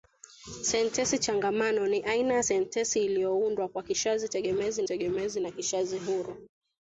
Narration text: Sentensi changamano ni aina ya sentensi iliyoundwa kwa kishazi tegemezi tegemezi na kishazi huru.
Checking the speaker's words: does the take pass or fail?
pass